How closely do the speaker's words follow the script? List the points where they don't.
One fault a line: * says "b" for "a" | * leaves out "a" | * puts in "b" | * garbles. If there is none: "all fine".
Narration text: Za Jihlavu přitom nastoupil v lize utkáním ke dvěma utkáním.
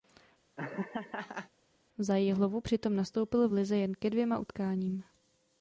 * says "jen" for "utkáním"